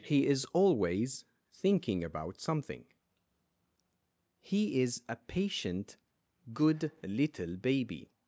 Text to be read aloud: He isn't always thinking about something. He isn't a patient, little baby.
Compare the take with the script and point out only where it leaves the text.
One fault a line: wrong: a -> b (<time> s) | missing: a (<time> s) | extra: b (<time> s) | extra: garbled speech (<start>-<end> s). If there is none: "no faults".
wrong: isn't -> is (0.3 s)
wrong: isn't -> is (4.8 s)
extra: good (6.5 s)